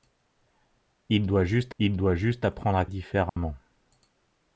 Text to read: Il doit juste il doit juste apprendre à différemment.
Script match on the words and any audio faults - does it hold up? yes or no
no